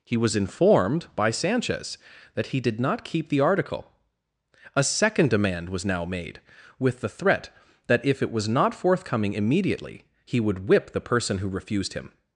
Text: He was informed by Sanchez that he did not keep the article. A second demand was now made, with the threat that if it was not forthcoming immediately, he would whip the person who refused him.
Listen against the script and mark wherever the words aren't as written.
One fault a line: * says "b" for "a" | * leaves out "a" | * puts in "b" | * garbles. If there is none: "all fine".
all fine